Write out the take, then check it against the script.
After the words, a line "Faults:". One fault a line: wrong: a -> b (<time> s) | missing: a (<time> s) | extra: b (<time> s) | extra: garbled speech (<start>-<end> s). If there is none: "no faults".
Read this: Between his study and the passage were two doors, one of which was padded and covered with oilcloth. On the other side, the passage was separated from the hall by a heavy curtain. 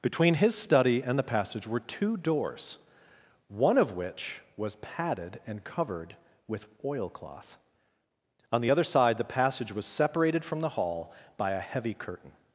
Between his study and the passage were two doors, one of which was padded and covered with oilcloth. On the other side, the passage was separated from the hall by a heavy curtain.
Faults:
no faults